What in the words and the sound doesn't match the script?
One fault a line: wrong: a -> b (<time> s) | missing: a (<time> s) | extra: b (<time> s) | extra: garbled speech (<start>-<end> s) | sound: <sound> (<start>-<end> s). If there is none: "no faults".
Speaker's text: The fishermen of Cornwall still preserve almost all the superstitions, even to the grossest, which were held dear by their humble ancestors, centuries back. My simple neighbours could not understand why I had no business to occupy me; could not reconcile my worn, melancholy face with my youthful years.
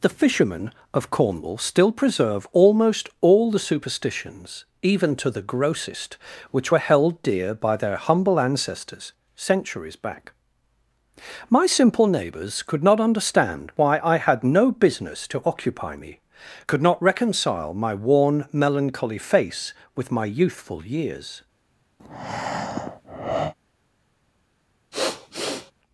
sound: breath (22.0-23.5 s)
sound: sniff (24.9-25.7 s)